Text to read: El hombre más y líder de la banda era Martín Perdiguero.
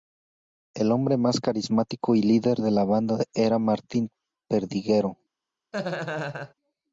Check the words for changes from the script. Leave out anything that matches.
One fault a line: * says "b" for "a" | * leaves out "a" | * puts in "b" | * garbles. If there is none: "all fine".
* puts in "carismático"